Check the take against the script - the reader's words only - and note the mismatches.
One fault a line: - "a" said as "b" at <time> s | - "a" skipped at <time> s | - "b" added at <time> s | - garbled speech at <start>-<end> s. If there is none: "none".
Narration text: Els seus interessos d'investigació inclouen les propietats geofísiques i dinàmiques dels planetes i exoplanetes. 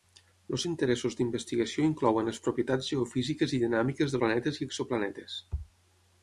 - "seus" skipped at 0.6 s
- "dels" skipped at 4.2 s